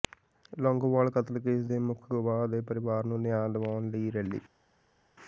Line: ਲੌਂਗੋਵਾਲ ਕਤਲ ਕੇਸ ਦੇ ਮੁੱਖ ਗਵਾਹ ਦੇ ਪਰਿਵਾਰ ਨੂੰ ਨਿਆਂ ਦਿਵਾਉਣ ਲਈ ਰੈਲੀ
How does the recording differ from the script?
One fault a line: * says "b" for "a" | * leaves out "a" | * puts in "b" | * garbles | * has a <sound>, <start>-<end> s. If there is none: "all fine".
all fine